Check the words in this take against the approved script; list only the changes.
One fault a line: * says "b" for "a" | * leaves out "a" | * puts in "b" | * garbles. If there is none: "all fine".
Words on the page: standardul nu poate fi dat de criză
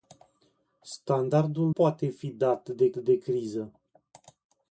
* leaves out "nu"
* puts in "de"